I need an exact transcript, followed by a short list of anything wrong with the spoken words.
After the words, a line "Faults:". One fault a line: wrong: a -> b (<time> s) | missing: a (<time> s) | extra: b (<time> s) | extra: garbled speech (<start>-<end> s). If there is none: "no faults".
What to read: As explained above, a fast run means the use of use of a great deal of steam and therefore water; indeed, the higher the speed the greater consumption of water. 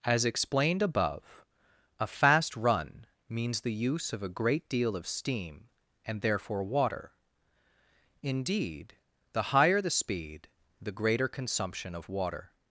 As explained above, a fast run means the use of a great deal of steam and therefore water; indeed, the higher the speed the greater consumption of water.
Faults:
missing: use of (4.2 s)